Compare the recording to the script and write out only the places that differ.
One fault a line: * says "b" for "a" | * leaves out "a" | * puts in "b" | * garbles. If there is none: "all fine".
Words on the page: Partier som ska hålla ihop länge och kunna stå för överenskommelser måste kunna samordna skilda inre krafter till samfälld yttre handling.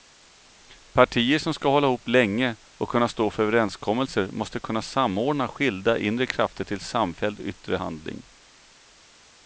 all fine